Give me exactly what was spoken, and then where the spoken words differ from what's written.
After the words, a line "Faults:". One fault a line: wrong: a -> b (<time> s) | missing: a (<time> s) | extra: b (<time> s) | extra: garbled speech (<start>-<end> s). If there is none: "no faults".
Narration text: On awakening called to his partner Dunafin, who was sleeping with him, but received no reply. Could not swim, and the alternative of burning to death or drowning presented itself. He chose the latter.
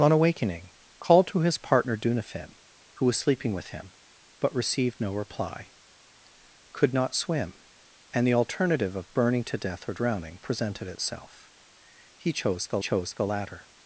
On awakening called to his partner Dunafin, who was sleeping with him, but received no reply. Could not swim, and the alternative of burning to death or drowning presented itself. He chose the chose the latter.
Faults:
extra: chose the (12.8 s)